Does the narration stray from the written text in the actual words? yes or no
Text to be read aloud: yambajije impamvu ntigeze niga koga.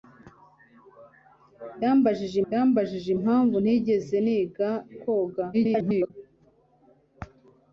yes